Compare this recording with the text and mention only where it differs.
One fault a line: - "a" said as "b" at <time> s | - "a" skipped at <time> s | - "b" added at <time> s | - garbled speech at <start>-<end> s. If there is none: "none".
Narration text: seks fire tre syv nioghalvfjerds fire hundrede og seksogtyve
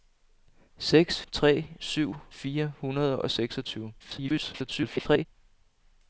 - "fire" skipped at 1.2 s
- "nioghalvfjerds" skipped at 2.1 s
- garbled speech at 4.0-5.3 s